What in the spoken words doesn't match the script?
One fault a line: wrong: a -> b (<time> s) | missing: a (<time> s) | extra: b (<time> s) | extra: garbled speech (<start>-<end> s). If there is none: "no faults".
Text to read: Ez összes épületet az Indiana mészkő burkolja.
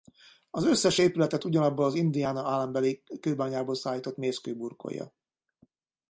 wrong: Ez -> Az (0.5 s)
extra: ugyanabból (1.4 s)
extra: állambeli kőbányából szállított (2.5 s)